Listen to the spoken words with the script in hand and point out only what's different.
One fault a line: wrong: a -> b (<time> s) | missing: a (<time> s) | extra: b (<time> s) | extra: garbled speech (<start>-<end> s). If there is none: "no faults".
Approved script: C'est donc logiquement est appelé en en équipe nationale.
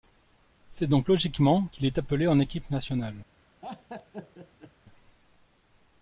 extra: qu'il (1.7 s)
missing: en (2.4 s)